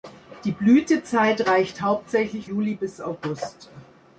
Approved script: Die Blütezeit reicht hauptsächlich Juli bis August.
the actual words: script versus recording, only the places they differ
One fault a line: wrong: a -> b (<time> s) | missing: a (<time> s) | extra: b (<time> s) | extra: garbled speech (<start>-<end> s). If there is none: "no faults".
no faults